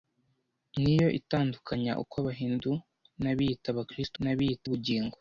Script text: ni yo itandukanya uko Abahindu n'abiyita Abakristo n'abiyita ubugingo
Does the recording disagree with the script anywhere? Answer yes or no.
no